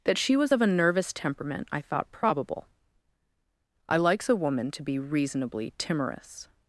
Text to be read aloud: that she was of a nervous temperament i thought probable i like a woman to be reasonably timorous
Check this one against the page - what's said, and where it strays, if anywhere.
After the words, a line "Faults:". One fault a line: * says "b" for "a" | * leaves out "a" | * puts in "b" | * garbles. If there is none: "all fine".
that she was of a nervous temperament i thought probable i likes a woman to be reasonably timorous
Faults:
* says "likes" for "like"